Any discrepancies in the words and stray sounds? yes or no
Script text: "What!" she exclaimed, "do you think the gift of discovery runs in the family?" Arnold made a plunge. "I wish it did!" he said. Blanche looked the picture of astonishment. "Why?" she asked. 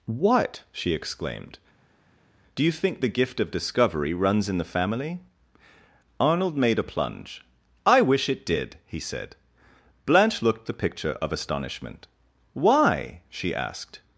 no